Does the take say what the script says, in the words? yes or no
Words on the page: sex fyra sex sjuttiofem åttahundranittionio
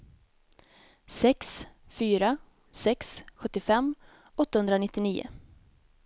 yes